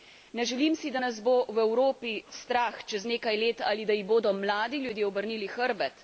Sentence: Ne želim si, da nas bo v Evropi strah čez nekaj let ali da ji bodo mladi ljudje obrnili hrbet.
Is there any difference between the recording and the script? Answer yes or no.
no